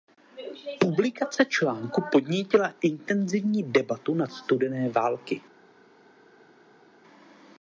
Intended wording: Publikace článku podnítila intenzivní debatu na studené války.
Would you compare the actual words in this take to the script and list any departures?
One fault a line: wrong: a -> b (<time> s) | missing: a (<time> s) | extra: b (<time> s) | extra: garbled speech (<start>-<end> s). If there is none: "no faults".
no faults